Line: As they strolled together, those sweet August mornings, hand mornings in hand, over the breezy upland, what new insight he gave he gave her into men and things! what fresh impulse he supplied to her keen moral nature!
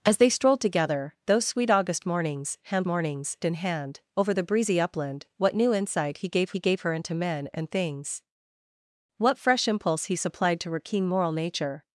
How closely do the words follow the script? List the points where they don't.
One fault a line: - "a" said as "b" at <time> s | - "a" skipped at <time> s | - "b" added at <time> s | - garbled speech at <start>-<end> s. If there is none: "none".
none